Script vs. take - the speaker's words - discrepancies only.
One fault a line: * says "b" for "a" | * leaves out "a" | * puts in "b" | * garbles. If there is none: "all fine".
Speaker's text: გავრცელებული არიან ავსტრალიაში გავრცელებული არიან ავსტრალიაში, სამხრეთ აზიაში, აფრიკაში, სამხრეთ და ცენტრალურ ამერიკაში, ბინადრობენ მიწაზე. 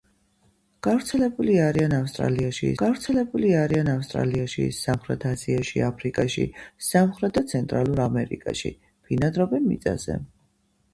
all fine